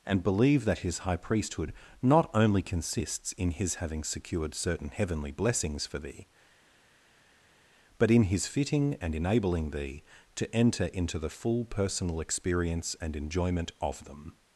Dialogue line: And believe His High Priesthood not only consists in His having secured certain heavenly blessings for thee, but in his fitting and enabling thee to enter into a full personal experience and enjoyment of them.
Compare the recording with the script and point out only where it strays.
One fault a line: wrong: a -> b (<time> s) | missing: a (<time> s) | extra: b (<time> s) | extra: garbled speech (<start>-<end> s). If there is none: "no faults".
extra: that (0.7 s)
wrong: a -> the (11.2 s)